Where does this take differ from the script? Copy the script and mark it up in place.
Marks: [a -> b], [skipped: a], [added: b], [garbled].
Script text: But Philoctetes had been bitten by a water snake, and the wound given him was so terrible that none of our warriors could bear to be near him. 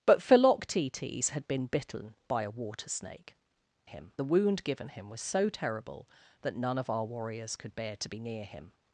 But Philoctetes had been bitten by a water snake, [and -> him] the wound given him was so terrible that none of our warriors could bear to be near him.